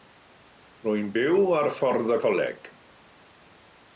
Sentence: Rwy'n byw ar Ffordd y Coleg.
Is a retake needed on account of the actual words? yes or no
no